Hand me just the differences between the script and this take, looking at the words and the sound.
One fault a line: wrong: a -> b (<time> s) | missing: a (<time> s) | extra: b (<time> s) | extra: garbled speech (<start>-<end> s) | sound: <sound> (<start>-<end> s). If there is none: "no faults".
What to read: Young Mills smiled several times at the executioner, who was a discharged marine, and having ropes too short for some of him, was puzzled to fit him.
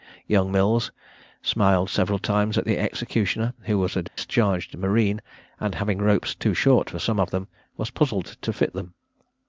sound: dropout (4.1-4.2 s)
wrong: him -> them (7.3 s)
wrong: him -> them (8.7 s)